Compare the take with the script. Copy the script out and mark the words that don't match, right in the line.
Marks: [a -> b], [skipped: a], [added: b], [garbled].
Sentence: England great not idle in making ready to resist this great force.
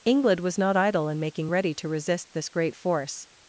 England [great -> was] not idle in making ready to resist this great force.